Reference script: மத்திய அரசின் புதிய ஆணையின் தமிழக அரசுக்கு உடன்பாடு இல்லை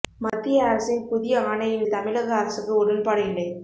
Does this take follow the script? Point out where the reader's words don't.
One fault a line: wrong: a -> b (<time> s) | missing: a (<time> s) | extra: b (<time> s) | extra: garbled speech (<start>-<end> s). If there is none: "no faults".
no faults